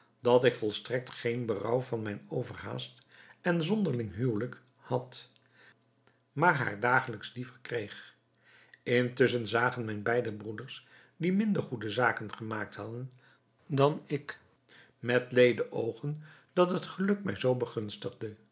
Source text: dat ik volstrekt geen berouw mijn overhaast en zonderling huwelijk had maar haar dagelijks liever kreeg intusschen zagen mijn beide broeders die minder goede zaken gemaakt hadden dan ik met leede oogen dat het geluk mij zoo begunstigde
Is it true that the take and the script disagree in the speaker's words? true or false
true